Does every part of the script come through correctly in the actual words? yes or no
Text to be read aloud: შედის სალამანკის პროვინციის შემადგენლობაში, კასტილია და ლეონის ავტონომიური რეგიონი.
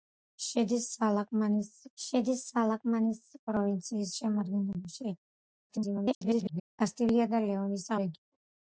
no